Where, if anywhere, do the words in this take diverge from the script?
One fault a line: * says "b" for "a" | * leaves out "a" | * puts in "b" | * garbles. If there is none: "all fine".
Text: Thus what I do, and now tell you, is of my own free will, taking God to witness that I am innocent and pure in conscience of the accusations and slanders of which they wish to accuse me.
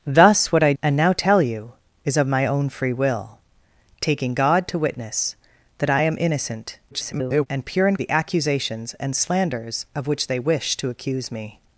* leaves out "do"
* garbles
* leaves out "conscience of"